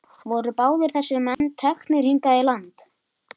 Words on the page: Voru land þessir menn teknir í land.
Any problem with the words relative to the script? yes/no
yes